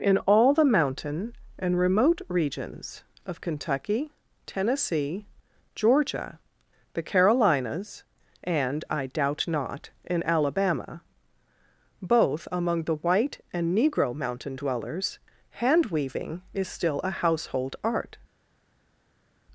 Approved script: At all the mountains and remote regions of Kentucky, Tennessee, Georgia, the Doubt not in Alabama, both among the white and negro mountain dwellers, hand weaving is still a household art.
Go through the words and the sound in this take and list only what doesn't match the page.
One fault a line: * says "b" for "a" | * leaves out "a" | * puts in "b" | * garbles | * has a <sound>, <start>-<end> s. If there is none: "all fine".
* says "In" for "At"
* says "mountain" for "mountains"
* puts in "Carolinas and I"